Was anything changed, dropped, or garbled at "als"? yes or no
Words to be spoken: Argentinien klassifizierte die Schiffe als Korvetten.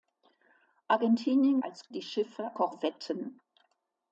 yes